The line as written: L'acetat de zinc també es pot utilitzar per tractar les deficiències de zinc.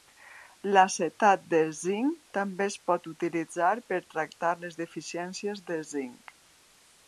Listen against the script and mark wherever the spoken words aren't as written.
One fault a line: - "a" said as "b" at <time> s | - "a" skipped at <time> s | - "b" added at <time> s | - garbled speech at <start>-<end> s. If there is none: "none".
none